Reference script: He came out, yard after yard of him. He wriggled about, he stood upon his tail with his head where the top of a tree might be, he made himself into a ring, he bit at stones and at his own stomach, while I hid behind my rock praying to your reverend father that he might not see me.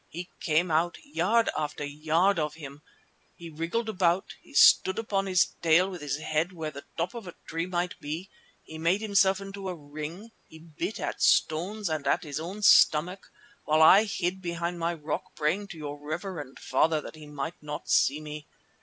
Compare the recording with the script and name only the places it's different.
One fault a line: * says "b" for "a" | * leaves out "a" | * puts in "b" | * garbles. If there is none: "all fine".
all fine